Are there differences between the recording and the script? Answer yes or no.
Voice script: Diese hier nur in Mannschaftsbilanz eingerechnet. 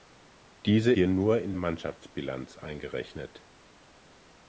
no